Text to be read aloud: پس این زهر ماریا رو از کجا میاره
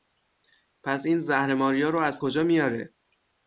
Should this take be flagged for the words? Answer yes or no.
no